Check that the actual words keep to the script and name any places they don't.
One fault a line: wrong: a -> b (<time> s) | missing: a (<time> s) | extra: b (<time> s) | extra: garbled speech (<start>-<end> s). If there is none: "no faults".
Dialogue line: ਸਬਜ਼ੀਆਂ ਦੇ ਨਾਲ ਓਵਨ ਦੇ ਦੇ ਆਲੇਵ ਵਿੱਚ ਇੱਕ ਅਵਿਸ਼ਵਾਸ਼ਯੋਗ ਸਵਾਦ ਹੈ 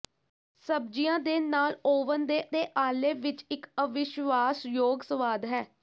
no faults